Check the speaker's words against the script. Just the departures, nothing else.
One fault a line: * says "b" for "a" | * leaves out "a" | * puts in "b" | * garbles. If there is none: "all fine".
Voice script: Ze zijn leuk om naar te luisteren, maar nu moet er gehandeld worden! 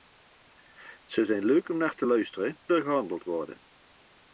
* leaves out "maar nu moet"